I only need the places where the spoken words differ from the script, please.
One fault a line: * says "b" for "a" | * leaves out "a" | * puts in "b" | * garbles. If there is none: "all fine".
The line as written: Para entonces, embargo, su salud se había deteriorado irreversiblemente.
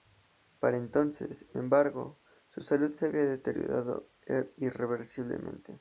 all fine